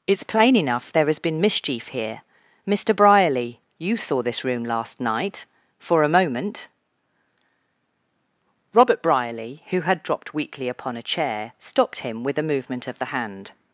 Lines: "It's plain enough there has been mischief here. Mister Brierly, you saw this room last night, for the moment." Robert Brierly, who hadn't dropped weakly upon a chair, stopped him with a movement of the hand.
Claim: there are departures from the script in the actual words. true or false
true